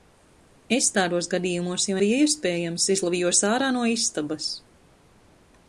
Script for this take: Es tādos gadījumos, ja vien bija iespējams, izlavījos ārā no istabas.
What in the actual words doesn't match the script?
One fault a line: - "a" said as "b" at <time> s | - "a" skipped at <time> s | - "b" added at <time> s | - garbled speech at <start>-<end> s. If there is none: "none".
- "vien" skipped at 2.0 s